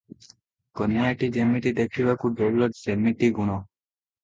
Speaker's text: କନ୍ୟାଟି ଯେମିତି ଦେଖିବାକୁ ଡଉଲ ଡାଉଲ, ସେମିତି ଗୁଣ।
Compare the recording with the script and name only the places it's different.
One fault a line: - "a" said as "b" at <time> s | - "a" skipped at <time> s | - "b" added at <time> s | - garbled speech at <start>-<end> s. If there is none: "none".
- "ଡାଉଲ" skipped at 2.7 s